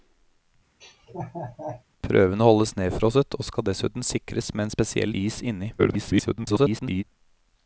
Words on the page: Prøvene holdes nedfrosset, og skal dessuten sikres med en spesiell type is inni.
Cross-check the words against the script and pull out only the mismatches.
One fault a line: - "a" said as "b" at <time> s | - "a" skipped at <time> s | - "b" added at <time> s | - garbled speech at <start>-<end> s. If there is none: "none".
- "type" skipped at 5.1 s
- garbled speech at 5.8-7.0 s